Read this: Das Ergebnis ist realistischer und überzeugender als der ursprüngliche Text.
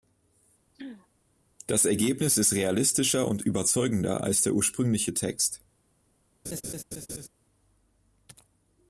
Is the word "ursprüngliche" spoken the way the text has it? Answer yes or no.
yes